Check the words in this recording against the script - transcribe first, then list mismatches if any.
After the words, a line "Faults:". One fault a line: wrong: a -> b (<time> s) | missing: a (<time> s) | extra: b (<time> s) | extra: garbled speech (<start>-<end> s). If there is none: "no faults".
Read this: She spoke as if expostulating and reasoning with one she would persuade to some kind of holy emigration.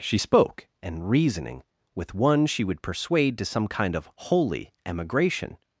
She spoke and reasoning with one she would persuade to some kind of holy emigration.
Faults:
missing: as if expostulating (0.7 s)